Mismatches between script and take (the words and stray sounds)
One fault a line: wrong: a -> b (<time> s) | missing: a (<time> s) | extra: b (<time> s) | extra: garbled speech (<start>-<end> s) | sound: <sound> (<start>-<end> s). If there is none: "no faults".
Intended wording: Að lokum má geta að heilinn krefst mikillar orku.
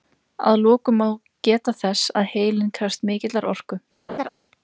extra: þess (1.8 s)
sound: laugh (4.1-4.3 s)